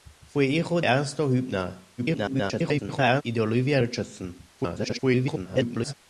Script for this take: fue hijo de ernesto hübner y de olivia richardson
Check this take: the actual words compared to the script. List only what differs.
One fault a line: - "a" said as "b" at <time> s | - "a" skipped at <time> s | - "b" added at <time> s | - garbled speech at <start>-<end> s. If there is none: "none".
- "de" skipped at 0.8 s
- garbled speech at 2.0-3.2 s
- garbled speech at 4.6-5.9 s